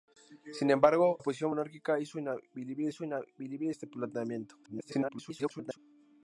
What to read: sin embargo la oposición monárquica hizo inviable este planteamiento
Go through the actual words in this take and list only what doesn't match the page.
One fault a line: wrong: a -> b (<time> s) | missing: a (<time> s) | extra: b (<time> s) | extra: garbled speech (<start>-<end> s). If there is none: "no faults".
missing: la (1.2 s)
extra: hizo inviable (2.9 s)
extra: garbled speech (4.6-5.8 s)